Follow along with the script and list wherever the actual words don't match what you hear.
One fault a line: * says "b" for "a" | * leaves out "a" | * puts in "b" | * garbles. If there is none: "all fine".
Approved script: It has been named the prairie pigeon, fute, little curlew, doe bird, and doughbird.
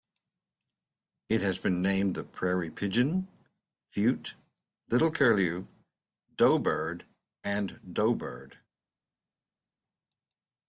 all fine